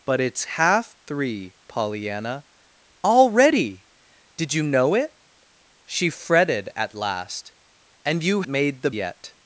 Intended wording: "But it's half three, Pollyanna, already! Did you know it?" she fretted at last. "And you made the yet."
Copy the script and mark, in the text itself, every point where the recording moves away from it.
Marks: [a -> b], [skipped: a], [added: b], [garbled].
"But it's half three, Pollyanna, already! Did you know it?" she fretted at last. "And you made the yet."